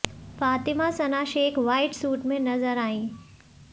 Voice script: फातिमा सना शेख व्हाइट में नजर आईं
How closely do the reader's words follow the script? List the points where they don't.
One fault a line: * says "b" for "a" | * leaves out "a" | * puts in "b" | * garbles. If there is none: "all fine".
* puts in "सूट"